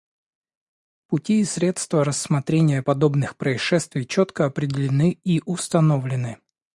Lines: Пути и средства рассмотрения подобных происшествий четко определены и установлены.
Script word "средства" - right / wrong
right